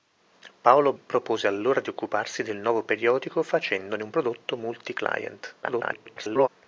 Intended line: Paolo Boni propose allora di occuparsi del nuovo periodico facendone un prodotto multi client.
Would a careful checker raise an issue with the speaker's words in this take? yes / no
yes